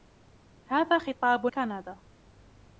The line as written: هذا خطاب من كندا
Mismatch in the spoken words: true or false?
true